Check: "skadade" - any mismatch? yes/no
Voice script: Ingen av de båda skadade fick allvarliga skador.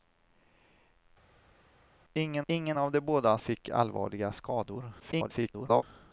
yes